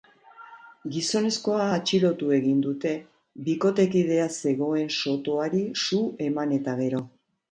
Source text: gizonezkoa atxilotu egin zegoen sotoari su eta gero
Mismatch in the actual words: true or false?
true